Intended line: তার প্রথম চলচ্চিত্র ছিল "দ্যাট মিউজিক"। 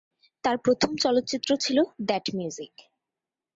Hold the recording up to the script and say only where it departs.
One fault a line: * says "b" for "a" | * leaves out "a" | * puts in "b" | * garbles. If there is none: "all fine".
all fine